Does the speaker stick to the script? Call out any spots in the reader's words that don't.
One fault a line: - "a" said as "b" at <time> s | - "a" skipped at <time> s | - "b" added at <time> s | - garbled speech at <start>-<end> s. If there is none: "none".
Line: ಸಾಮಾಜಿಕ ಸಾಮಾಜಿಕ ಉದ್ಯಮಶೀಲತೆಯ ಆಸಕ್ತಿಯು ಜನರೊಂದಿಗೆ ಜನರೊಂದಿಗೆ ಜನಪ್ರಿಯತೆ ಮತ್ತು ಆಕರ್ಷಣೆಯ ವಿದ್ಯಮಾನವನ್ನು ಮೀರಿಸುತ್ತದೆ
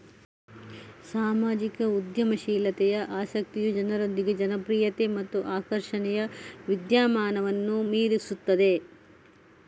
- "ಸಾಮಾಜಿಕ" skipped at 1.9 s
- "ಜನರೊಂದಿಗೆ" skipped at 4.3 s